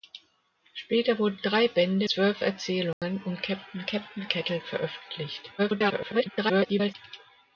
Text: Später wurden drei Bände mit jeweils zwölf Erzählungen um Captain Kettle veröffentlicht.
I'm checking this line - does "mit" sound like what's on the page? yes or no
no